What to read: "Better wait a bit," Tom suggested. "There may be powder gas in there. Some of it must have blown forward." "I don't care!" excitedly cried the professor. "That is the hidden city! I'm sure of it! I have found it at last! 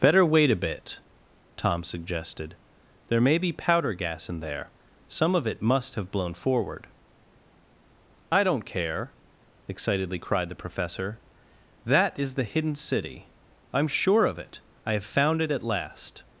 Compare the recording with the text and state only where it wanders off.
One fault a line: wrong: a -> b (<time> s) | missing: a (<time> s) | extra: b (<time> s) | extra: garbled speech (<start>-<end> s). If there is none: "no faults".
no faults